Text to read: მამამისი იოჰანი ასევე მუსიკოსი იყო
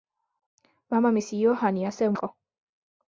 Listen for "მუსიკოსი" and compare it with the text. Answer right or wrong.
wrong